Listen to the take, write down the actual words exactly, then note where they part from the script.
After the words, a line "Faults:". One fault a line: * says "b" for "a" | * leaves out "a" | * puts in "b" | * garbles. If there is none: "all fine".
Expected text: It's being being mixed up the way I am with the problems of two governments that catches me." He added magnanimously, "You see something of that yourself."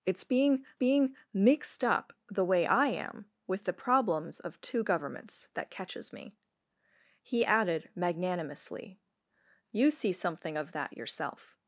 It's being being mixed up the way I am with the problems of two governments that catches me." He added magnanimously, "You see something of that yourself."
Faults:
all fine